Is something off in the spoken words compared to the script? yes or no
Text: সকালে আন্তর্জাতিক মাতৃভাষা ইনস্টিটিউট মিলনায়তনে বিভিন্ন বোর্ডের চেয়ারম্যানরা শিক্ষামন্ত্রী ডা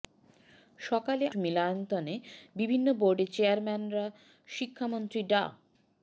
yes